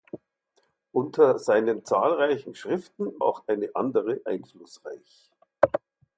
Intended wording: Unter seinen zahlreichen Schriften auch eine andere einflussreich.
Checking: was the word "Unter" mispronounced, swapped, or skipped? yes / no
no